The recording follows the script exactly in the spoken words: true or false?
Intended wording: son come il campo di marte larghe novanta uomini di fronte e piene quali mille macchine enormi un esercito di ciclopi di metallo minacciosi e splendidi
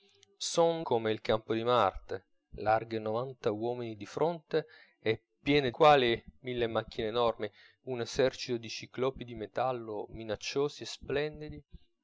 true